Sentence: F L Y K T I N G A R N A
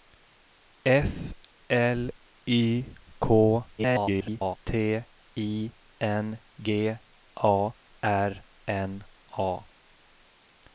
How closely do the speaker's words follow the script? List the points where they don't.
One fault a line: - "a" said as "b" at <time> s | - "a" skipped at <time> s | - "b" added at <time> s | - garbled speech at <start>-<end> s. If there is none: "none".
- garbled speech at 3.8-4.6 s